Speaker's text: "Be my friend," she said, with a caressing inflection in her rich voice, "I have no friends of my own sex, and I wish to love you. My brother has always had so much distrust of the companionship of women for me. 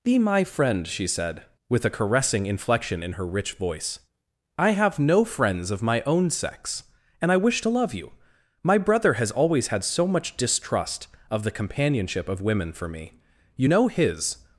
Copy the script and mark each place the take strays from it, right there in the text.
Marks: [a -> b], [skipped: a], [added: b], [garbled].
"Be my friend," she said, with a caressing inflection in her rich voice, "I have no friends of my own sex, and I wish to love you. My brother has always had so much distrust of the companionship of women for me. [added: You know his]